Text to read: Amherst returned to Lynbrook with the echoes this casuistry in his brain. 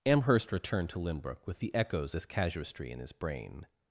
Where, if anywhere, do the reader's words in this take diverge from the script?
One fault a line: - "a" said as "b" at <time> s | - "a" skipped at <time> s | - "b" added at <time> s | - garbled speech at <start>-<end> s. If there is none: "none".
none